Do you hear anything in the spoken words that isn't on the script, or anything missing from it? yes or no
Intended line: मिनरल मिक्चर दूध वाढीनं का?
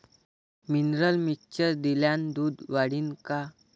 yes